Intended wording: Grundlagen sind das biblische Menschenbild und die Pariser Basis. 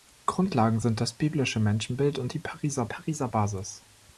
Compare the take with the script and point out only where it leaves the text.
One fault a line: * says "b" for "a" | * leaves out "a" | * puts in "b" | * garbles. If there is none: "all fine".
* puts in "Pariser"